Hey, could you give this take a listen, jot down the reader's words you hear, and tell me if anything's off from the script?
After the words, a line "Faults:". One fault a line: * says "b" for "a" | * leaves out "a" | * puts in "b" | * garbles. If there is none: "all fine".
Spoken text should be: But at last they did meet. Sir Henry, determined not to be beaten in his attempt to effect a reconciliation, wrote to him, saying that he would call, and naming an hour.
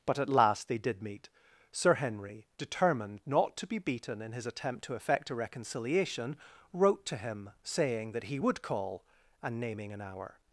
But at last they did meet. Sir Henry, determined not to be beaten in his attempt to effect a reconciliation, wrote to him, saying that he would call, and naming an hour.
Faults:
all fine